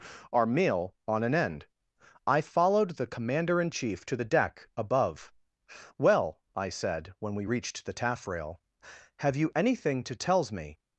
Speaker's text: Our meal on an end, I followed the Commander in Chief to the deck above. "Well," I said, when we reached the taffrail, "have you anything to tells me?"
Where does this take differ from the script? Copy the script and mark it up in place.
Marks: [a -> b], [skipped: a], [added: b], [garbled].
Our meal on an end, I followed the Commander in Chief to the deck above. "Well," I said, when we reached the taffrail, "have you anything to tells me?"